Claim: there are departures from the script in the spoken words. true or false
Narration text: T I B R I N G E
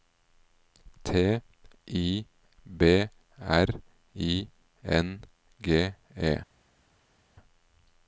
false